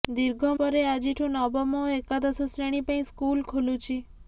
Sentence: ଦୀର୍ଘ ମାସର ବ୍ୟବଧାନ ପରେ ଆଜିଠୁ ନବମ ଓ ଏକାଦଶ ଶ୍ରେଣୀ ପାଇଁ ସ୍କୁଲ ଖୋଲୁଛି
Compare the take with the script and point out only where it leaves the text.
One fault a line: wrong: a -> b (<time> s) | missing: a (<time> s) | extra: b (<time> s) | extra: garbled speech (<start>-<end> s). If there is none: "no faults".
missing: ମାସର ବ୍ୟବଧାନ (0.5 s)